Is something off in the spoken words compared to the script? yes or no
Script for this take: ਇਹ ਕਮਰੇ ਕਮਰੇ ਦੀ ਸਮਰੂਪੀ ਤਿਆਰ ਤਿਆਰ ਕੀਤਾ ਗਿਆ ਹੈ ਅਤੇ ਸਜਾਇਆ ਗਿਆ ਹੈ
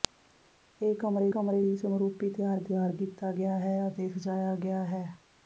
no